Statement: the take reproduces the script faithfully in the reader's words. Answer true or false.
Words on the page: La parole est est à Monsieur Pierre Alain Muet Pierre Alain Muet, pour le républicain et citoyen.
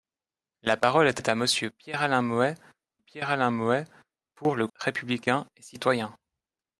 true